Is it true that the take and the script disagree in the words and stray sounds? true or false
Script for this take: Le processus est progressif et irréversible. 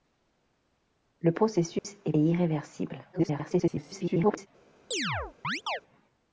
true